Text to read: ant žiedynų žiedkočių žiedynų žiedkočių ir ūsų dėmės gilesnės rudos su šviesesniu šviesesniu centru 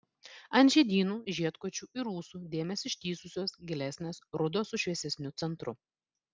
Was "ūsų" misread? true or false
false